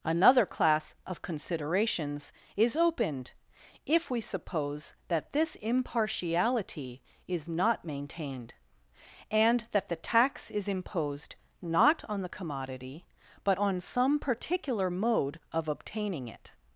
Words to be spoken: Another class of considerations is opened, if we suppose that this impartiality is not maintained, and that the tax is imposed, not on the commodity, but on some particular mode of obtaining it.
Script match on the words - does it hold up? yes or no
yes